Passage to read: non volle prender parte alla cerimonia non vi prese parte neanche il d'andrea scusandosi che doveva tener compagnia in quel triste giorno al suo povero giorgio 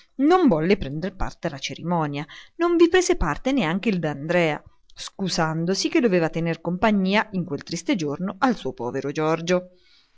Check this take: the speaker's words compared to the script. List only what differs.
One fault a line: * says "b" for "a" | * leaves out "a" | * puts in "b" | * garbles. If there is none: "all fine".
all fine